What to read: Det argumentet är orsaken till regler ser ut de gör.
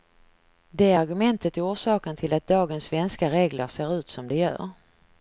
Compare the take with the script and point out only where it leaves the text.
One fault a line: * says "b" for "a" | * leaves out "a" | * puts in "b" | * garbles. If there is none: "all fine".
* puts in "att dagens svenska"
* puts in "som"